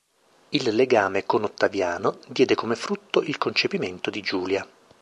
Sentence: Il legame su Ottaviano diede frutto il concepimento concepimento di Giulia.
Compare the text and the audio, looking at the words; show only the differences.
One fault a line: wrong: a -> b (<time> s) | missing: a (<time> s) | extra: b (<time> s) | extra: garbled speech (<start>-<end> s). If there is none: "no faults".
wrong: su -> con (1.3 s)
extra: come (2.6 s)
missing: concepimento (4.1 s)